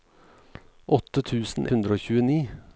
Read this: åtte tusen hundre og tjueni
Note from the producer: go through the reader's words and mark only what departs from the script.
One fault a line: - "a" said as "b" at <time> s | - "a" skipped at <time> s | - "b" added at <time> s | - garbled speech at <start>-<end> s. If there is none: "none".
none